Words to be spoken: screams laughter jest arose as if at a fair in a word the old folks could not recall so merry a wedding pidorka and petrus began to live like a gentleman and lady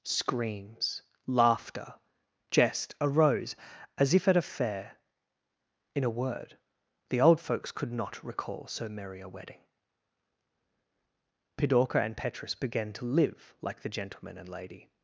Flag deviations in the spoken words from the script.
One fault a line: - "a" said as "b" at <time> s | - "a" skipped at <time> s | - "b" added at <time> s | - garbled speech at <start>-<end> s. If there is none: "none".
- "a" said as "the" at 13.8 s